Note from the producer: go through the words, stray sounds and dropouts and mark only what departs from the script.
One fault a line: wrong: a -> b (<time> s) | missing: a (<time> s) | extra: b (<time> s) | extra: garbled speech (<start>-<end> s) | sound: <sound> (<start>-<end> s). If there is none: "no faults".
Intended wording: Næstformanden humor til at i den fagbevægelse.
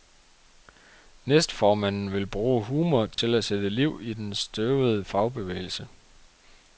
extra: vil bruge (2.1 s)
sound: dropout (3.1-3.2 s)
extra: sætte liv (3.4 s)
extra: støvede (4.3 s)